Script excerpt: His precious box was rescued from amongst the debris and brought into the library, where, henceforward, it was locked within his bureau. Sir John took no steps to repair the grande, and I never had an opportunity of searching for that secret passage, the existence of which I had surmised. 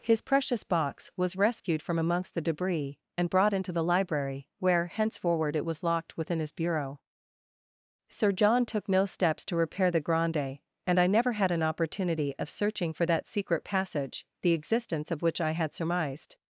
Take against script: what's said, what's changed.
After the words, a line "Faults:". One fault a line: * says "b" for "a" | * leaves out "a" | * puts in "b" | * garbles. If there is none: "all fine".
His precious box was rescued from amongst the debris and brought into the library, where, henceforward, it was locked within his bureau. Sir John took no steps to repair the grande, and I never had an opportunity of searching for that secret passage, the existence of which I had surmised.
Faults:
all fine